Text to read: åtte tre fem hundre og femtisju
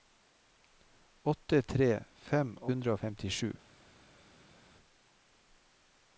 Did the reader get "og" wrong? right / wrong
right